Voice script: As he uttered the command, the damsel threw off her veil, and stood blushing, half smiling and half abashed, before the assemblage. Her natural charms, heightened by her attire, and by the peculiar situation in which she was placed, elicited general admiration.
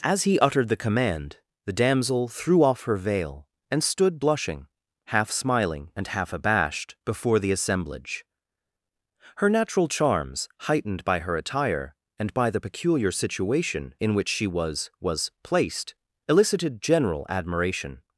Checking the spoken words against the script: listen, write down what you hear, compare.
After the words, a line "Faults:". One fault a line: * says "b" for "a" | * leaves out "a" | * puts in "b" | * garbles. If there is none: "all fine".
As he uttered the command, the damsel threw off her veil, and stood blushing, half smiling and half abashed, before the assemblage. Her natural charms, heightened by her attire, and by the peculiar situation in which she was was placed, elicited general admiration.
Faults:
* puts in "was"